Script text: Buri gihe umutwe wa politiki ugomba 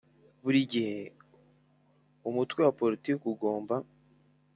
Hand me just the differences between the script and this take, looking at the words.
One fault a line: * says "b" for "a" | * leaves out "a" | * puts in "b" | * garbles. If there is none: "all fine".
all fine